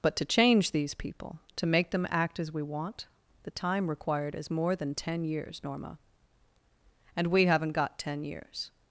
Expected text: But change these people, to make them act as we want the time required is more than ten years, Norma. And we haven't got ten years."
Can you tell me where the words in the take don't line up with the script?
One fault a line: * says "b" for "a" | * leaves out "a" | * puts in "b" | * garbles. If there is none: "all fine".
* puts in "to"